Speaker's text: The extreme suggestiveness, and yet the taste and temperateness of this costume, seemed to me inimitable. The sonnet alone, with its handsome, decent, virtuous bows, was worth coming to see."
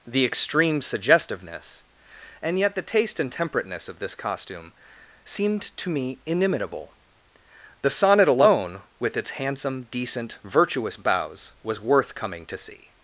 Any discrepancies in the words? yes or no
no